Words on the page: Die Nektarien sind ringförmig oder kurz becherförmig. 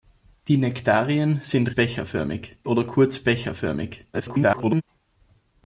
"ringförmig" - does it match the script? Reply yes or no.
no